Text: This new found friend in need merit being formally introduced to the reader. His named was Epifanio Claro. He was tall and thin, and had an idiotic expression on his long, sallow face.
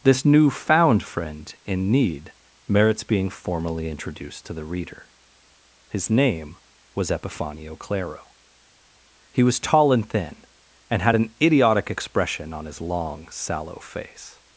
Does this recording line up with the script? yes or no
no